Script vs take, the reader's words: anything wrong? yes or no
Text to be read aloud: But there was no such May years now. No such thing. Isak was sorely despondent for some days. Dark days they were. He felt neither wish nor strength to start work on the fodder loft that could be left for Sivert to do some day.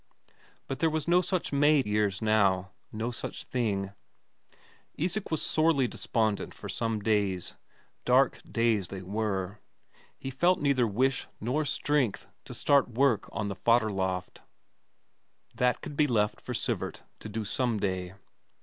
no